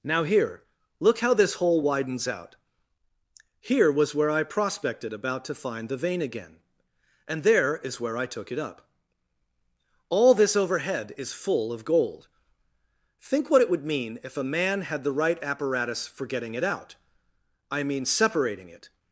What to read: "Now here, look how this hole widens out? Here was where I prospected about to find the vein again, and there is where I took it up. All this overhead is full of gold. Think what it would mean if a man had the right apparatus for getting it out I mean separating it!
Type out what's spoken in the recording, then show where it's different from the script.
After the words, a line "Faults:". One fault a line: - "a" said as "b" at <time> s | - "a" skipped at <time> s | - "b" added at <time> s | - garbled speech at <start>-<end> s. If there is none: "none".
"Now here, look how this hole widens out? Here was where I prospected about to find the vein again, and there is where I took it up. All this overhead is full of gold. Think what it would mean if a man had the right apparatus for getting it out I mean separating it!
Faults:
none